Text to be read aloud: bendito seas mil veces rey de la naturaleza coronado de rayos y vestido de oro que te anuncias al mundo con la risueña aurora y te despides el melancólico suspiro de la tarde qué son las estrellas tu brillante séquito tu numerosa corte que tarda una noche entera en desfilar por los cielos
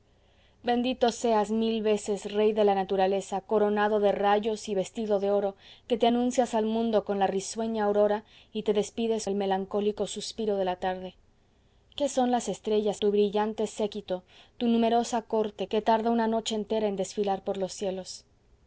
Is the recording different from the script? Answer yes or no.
no